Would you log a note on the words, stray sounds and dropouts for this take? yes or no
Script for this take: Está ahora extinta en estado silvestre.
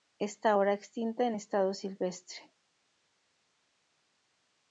no